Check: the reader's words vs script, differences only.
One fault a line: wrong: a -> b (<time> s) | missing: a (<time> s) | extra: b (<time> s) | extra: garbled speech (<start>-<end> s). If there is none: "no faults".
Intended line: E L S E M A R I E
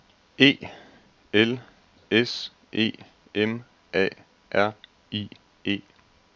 no faults